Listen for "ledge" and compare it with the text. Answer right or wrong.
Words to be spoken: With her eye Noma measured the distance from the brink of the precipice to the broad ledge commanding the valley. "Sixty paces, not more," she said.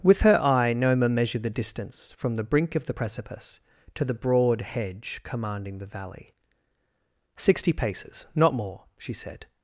wrong